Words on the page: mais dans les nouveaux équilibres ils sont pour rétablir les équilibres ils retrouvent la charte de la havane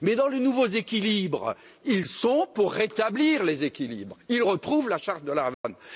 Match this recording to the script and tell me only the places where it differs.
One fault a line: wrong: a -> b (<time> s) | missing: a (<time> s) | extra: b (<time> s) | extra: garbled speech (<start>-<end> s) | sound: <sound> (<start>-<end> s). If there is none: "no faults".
sound: dropout (5.5-5.6 s)